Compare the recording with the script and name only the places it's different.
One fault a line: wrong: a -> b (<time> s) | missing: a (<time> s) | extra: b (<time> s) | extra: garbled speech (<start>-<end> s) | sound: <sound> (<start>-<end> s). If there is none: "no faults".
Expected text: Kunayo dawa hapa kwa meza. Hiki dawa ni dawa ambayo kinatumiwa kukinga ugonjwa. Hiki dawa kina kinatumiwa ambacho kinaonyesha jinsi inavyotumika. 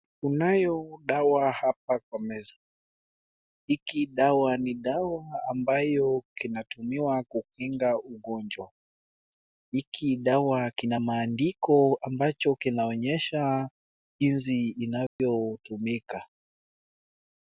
wrong: kinatumiwa -> maandiko (11.0 s)
sound: dropout (15.1-15.2 s)